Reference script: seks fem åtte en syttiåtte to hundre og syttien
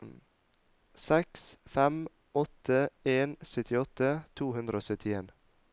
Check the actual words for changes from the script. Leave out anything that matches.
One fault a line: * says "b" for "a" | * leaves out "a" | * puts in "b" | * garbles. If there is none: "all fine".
all fine